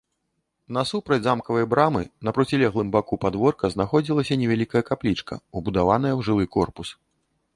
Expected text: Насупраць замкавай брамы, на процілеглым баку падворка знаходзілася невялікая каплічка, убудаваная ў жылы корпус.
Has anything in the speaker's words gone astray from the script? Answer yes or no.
no